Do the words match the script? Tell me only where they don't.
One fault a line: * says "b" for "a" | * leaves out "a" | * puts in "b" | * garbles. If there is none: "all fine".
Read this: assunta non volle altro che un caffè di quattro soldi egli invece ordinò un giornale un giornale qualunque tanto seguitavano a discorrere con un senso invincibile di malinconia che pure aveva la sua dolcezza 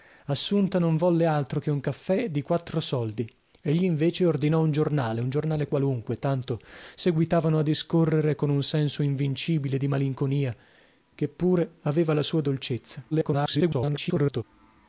* garbles